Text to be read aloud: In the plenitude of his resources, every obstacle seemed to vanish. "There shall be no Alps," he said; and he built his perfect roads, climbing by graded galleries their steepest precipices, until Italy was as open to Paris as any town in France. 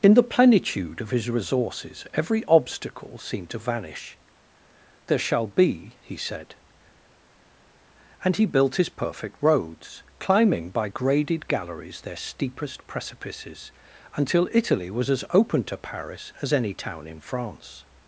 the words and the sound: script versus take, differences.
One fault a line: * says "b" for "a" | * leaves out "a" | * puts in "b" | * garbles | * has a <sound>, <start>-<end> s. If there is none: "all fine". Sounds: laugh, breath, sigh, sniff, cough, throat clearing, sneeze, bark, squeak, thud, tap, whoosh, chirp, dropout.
* leaves out "no Alps"